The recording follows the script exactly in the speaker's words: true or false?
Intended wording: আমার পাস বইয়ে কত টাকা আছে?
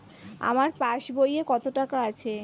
true